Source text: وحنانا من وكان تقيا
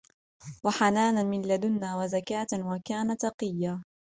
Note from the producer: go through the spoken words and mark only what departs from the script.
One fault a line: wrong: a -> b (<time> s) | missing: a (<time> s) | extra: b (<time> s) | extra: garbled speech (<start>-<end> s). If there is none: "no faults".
extra: لدنا وزكاة (1.4 s)